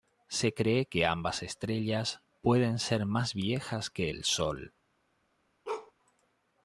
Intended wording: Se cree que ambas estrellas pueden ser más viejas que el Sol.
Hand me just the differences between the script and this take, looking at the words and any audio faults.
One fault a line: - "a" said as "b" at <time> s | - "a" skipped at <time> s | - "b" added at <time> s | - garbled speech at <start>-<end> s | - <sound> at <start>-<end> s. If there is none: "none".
- bark at 5.6-5.9 s